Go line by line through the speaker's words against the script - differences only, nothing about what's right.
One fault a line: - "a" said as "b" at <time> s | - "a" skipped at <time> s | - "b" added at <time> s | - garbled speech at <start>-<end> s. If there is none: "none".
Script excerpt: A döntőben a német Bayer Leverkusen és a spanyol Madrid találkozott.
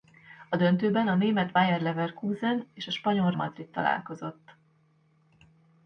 none